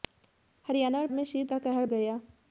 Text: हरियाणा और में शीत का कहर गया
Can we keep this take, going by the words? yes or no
yes